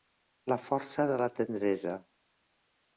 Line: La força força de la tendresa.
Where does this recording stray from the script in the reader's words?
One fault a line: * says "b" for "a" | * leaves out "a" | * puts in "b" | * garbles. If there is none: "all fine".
* leaves out "força"